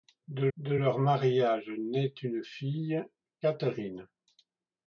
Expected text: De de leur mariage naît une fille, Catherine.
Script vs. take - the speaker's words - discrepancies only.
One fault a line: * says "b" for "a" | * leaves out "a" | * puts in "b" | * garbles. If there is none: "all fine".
all fine